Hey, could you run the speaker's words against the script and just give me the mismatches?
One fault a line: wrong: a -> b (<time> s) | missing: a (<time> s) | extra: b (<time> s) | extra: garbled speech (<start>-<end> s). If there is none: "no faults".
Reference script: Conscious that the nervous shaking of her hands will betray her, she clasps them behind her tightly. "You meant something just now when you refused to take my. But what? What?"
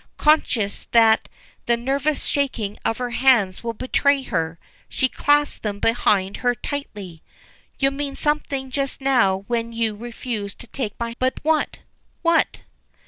no faults